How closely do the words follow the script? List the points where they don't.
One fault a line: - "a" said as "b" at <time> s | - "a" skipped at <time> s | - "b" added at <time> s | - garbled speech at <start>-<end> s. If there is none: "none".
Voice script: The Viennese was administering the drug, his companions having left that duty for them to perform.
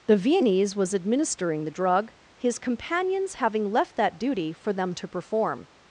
none